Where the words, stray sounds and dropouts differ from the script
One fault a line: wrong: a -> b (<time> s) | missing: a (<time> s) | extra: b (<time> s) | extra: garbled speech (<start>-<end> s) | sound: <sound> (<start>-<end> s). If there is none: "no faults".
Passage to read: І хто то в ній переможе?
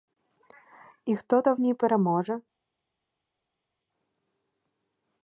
no faults